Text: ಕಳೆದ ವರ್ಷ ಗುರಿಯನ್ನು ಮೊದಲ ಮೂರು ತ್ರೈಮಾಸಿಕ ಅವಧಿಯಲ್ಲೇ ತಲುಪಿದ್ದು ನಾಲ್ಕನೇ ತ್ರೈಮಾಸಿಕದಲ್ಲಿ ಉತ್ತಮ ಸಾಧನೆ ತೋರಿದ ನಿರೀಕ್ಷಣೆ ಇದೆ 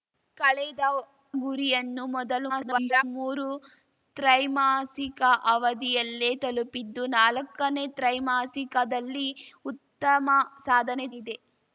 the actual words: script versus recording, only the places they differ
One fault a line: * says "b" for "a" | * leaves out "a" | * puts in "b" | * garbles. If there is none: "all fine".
* leaves out "ವರ್ಷ"
* garbles
* leaves out "ತೋರಿದ ನಿರೀಕ್ಷಣೆ"